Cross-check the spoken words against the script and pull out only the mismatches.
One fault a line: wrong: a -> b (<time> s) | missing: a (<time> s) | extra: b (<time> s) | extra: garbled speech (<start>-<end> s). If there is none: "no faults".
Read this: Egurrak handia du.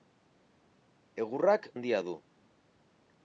no faults